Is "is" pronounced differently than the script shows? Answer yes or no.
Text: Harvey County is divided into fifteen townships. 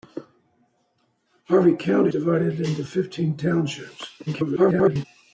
yes